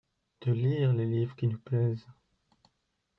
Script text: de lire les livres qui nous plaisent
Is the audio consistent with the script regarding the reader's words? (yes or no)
yes